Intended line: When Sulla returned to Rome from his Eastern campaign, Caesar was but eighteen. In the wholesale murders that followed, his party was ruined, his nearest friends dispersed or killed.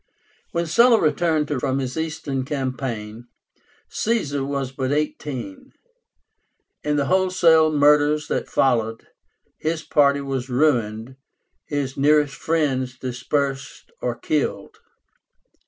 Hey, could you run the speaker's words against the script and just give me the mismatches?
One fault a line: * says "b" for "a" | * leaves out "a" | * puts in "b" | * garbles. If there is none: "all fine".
* leaves out "Rome"